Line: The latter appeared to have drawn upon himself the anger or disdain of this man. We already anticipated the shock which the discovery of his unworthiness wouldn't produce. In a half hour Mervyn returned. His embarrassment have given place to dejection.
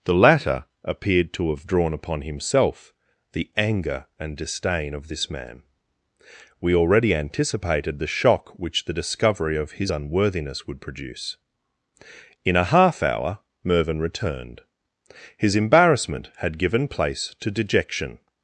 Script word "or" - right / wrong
wrong